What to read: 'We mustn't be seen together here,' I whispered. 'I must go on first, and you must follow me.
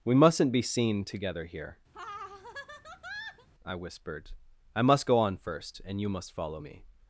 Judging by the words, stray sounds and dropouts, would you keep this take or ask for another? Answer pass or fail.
fail